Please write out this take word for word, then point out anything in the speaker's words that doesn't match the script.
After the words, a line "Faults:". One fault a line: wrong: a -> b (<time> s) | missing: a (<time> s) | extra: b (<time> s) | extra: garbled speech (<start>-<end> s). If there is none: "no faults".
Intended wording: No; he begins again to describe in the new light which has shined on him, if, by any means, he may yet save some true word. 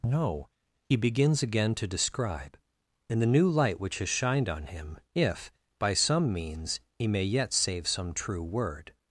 No; he begins again to describe in the new light which has shined on him, if, by some means, he may yet save some true word.
Faults:
wrong: any -> some (5.9 s)